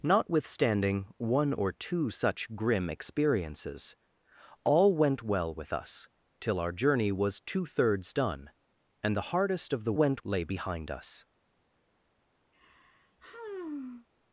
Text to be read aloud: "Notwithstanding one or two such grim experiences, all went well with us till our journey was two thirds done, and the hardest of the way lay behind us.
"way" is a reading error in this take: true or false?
true